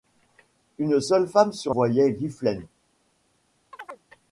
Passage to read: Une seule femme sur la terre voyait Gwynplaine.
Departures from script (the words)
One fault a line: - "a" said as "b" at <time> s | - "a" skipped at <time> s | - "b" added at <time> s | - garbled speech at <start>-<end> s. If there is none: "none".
- "la terre" skipped at 1.8 s